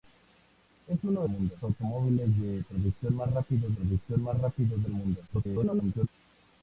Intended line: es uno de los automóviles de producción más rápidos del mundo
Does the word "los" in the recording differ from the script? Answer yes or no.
yes